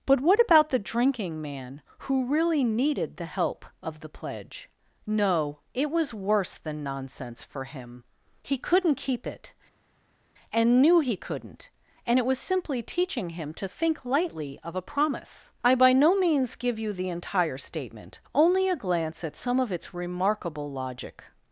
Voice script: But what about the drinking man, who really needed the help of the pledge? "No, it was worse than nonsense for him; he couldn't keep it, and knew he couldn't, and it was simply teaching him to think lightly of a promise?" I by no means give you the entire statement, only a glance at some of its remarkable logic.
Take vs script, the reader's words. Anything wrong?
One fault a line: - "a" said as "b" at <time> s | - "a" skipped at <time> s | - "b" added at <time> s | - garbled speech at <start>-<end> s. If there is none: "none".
none